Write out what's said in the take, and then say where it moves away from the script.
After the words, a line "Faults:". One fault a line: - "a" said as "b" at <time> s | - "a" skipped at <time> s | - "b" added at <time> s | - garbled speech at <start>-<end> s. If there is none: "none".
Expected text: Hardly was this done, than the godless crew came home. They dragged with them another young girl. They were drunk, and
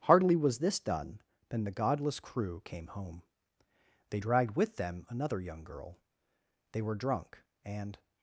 Hardly was this done, than the godless crew came home. They dragged with them another young girl. They were drunk, and
Faults:
none